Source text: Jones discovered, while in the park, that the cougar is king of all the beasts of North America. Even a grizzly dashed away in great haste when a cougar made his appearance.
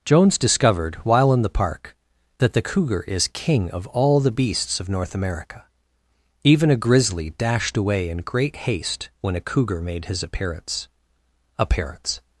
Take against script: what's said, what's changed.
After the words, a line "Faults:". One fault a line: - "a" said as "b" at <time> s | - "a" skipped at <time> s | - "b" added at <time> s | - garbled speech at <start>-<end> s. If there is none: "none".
Jones discovered, while in the park, that the cougar is king of all the beasts of North America. Even a grizzly dashed away in great haste when a cougar made his appearance appearance.
Faults:
- "appearance" added at 11.6 s